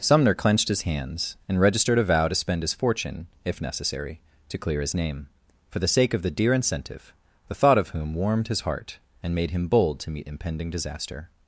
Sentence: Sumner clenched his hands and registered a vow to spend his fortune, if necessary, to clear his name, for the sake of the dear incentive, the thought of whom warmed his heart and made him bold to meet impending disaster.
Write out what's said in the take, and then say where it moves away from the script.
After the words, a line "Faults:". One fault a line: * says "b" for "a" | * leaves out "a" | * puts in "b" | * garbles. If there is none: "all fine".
Sumner clenched his hands and registered a vow to spend his fortune, if necessary, to clear his name, for the sake of the dear incentive, the thought of whom warmed his heart and made him bold to meet impending disaster.
Faults:
all fine